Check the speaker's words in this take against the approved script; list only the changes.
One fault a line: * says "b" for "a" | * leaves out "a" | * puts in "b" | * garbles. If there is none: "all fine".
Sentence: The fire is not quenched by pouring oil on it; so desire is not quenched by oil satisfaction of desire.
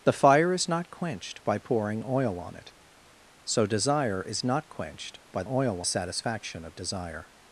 all fine